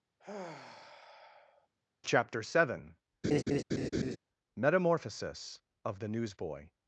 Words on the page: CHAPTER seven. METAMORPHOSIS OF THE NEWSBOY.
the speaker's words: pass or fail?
pass